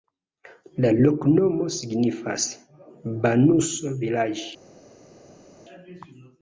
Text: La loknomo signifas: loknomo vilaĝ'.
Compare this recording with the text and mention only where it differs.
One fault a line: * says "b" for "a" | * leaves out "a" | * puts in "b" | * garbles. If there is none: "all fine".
* says "banuso" for "loknomo"